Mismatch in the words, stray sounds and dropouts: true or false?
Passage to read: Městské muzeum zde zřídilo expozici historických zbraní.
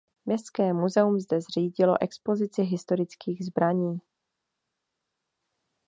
false